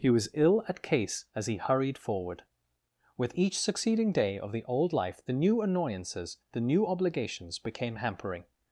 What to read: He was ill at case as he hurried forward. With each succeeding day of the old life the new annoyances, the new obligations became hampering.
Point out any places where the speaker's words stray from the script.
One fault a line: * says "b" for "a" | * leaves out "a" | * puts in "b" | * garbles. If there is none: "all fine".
all fine